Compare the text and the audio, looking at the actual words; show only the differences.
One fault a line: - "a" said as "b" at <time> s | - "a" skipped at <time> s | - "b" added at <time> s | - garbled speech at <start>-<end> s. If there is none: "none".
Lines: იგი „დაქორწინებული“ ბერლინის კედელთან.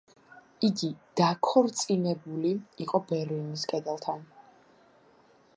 - "იყო" added at 2.9 s